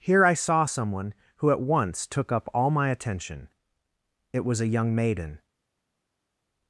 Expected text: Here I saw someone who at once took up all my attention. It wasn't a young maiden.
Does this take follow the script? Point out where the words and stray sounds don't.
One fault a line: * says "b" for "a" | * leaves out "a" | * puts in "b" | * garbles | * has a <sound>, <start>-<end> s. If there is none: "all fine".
* says "was" for "wasn't"